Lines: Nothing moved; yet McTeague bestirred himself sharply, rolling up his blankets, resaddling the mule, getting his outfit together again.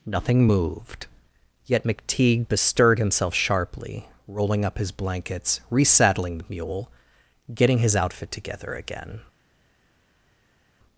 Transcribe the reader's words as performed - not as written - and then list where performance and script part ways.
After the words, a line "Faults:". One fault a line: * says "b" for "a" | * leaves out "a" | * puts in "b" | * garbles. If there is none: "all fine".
Nothing moved; yet McTeague bestirred himself sharply, rolling up his blankets, resaddling the mule, getting his outfit together again.
Faults:
all fine